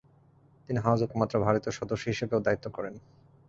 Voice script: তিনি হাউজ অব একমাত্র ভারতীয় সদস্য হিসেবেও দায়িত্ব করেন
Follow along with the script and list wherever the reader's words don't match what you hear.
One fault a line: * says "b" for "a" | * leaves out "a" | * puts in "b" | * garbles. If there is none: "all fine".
all fine